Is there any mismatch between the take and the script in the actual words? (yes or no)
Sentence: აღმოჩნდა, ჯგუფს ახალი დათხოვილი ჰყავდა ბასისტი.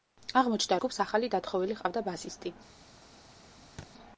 no